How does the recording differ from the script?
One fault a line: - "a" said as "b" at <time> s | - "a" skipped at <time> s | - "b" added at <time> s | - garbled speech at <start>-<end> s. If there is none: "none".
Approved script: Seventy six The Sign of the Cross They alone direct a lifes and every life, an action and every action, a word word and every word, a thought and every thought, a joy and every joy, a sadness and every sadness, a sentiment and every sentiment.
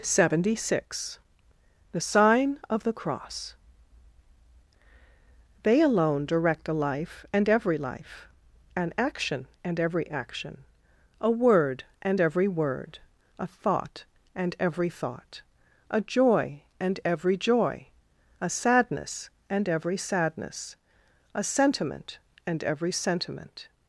- "lifes" said as "life" at 6.7 s
- "word" skipped at 11.8 s